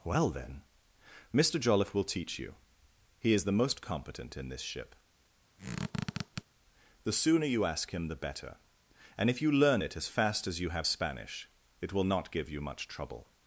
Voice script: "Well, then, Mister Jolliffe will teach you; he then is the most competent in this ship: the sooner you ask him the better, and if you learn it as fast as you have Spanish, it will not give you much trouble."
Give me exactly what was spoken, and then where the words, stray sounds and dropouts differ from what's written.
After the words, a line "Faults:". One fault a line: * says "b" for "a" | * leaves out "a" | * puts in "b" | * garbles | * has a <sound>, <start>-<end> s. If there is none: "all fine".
"Well, then, Mister Jolliffe will teach you; he is the most competent in this ship: the sooner you ask him the better, and if you learn it as fast as you have Spanish, it will not give you much trouble."
Faults:
* leaves out "then"
* has a squeak, 5.6-6.4 s